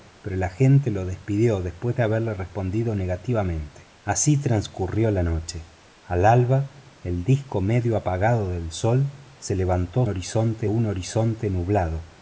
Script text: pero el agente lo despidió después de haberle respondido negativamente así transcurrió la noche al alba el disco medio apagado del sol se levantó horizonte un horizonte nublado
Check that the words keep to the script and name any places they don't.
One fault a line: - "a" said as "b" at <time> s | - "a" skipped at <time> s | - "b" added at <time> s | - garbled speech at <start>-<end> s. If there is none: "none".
none